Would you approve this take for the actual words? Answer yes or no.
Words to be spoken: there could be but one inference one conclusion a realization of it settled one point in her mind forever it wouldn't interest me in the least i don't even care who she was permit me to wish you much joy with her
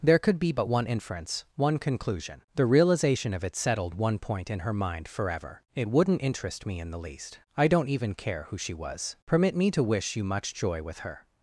no